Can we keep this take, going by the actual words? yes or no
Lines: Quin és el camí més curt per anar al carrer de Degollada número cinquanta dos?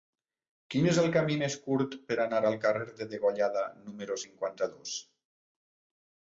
yes